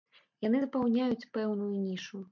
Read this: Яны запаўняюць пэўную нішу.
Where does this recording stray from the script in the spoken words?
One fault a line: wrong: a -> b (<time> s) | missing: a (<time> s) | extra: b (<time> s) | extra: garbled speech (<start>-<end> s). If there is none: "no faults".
no faults